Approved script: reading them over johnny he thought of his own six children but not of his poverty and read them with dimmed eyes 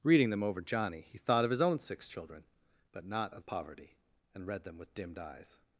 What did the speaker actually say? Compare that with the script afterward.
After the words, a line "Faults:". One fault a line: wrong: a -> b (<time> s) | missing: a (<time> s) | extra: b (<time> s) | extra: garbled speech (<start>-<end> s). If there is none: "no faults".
reading them over johnny he thought of his own six children but not of poverty and read them with dimmed eyes
Faults:
missing: his (3.4 s)